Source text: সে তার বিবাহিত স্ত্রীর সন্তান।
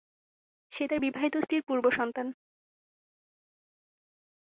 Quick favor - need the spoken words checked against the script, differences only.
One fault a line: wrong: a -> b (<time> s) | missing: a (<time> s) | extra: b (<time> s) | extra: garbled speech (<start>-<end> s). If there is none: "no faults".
extra: পূর্ব (1.7 s)